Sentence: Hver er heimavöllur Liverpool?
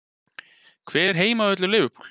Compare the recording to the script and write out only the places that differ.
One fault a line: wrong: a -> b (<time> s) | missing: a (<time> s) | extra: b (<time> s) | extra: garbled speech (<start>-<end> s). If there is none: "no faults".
no faults